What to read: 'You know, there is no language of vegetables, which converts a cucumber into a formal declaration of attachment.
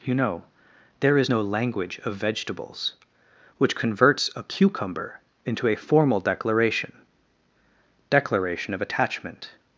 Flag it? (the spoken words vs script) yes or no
yes